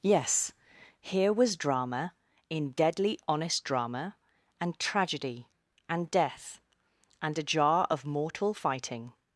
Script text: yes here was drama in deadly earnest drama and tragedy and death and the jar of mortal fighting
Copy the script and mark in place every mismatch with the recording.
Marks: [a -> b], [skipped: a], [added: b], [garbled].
yes here was drama in deadly [earnest -> honest] drama and tragedy and death and [the -> a] jar of mortal fighting